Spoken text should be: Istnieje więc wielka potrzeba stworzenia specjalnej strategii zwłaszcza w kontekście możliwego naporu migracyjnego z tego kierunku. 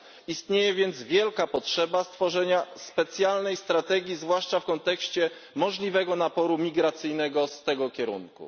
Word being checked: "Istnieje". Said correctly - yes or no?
yes